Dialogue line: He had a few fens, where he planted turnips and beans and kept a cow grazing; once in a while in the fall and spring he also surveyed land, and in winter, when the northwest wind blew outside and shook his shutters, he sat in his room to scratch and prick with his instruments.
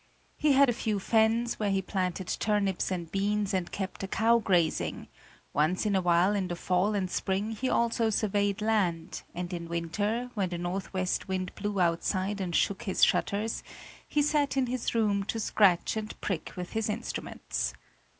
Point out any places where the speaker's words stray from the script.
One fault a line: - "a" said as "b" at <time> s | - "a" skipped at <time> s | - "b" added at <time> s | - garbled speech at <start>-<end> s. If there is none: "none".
none